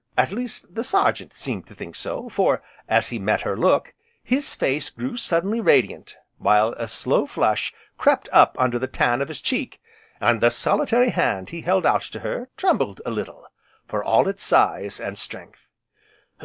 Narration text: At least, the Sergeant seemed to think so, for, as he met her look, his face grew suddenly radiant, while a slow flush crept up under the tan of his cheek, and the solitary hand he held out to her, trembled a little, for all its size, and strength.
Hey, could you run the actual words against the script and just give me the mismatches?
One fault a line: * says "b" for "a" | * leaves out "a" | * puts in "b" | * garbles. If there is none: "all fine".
all fine